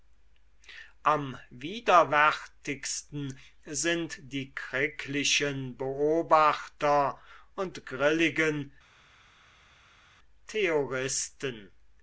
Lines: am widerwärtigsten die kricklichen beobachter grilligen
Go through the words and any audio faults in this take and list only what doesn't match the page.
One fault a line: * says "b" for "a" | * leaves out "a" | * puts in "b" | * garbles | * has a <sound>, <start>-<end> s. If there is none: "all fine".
* puts in "sind"
* puts in "und"